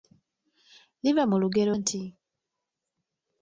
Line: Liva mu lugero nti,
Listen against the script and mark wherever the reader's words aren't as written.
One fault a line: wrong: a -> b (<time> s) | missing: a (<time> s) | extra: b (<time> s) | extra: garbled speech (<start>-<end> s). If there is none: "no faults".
no faults